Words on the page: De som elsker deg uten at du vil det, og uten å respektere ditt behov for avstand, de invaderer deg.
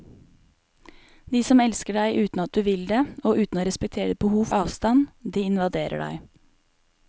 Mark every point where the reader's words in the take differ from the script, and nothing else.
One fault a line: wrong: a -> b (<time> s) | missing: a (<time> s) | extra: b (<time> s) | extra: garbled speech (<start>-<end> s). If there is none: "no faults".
missing: for (4.5 s)